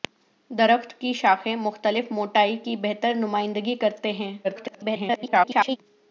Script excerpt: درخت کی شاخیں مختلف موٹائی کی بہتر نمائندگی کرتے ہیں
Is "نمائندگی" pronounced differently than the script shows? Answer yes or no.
no